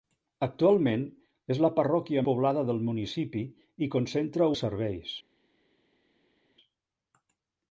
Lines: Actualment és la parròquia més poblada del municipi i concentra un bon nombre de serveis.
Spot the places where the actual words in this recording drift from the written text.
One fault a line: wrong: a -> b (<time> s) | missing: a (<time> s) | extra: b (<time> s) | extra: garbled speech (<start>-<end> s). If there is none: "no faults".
missing: més (2.2 s)
missing: un bon nombre (4.5 s)